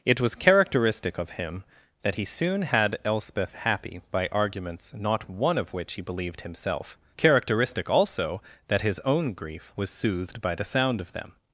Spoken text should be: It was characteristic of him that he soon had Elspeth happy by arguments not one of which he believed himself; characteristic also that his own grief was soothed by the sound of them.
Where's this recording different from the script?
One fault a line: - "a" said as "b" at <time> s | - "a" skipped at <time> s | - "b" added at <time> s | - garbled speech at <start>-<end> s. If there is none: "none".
none